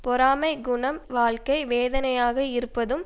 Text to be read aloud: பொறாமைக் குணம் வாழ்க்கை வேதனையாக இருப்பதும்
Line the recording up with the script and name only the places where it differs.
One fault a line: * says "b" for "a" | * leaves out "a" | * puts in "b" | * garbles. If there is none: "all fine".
all fine